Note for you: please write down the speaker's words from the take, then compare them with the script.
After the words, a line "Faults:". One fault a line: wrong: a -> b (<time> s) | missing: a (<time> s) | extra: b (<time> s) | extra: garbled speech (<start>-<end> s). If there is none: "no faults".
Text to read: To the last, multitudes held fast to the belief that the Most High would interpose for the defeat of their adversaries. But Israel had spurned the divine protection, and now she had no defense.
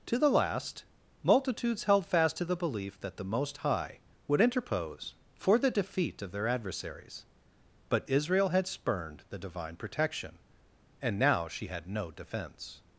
To the last, multitudes held fast to the belief that the Most High would interpose for the defeat of their adversaries. But Israel had spurned the divine protection, and now she had no defense.
Faults:
no faults